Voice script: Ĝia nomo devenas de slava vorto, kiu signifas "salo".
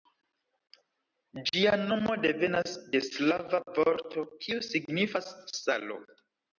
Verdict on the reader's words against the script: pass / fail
pass